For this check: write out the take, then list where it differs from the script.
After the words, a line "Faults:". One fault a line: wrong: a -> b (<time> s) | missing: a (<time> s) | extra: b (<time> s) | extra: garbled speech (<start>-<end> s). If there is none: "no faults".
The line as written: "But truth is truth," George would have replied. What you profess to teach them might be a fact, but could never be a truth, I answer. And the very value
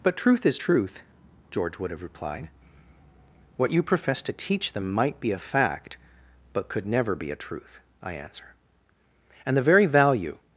"But truth is truth," George would have replied. What you profess to teach them might be a fact, but could never be a truth, I answer. And the very value
Faults:
no faults